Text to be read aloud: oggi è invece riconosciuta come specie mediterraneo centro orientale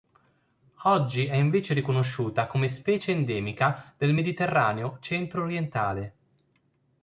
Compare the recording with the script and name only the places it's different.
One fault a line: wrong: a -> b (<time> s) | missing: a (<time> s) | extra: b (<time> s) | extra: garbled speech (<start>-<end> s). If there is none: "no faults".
extra: endemica del (3.1 s)